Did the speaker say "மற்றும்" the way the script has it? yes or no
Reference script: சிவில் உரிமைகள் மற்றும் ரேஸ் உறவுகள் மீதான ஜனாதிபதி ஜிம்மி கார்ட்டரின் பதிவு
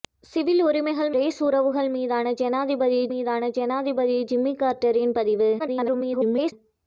no